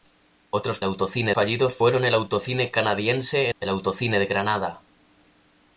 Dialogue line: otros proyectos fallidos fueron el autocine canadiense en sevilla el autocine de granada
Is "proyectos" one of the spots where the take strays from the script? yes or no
yes